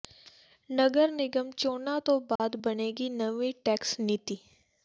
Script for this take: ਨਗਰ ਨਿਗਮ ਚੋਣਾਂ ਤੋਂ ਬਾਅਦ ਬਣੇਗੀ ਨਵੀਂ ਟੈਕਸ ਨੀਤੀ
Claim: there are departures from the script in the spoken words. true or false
false